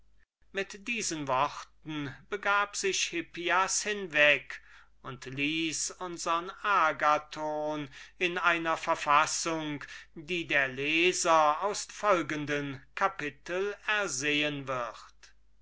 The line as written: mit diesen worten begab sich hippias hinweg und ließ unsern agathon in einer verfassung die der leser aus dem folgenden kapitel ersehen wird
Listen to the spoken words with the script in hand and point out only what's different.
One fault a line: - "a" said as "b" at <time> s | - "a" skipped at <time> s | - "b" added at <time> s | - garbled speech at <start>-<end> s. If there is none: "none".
- "dem" skipped at 11.9 s